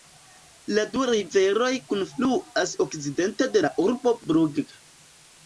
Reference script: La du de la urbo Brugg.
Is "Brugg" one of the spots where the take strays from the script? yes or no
no